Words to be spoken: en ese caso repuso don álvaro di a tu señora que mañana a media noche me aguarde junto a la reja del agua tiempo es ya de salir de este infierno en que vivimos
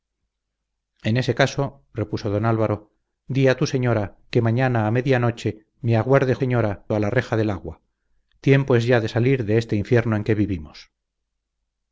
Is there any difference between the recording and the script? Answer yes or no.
yes